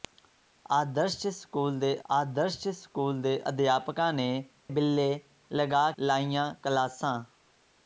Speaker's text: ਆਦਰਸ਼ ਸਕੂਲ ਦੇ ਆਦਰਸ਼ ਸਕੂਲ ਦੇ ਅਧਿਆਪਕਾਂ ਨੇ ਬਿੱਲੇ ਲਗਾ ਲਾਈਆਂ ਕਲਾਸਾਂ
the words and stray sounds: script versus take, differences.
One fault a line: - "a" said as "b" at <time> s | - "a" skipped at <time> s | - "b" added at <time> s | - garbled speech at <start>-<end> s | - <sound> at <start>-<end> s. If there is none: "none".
none